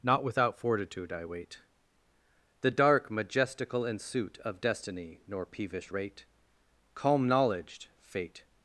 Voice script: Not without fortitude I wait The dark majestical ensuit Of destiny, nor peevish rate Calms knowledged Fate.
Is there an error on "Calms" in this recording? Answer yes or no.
yes